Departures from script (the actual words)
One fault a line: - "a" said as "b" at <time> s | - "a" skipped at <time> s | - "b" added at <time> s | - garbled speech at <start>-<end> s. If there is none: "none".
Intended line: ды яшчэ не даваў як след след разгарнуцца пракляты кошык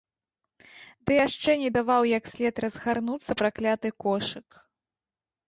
- "след" skipped at 2.5 s